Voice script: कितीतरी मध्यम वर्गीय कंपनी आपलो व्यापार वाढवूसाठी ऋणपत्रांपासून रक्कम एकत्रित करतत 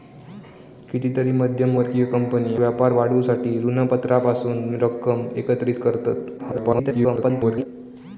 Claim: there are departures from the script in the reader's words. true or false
true